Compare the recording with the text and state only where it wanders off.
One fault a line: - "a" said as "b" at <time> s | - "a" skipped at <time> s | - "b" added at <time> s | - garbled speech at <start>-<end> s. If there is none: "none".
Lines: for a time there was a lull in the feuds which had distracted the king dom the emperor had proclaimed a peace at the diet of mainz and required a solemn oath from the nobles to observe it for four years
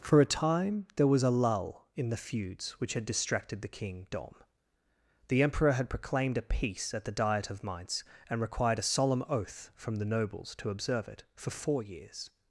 none